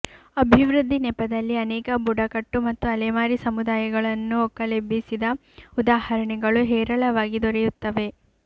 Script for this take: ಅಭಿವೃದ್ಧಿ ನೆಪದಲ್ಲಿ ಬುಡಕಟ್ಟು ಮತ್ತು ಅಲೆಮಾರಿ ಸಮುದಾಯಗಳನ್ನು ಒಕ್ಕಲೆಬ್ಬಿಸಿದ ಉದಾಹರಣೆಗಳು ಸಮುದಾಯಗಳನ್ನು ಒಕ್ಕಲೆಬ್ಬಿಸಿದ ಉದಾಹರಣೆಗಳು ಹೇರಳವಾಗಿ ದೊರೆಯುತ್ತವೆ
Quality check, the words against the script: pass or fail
fail